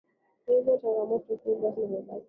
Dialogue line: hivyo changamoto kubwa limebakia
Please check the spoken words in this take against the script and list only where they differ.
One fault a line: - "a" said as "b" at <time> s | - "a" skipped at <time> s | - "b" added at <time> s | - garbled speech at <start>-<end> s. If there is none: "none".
none